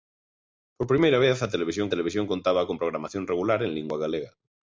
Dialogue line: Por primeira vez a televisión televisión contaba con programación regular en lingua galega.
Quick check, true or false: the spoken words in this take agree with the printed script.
true